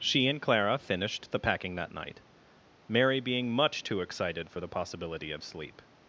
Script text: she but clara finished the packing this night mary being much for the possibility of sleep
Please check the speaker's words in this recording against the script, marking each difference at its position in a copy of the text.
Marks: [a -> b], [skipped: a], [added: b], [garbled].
she [but -> and] clara finished the packing [this -> that] night mary being much [added: too excited] for the possibility of sleep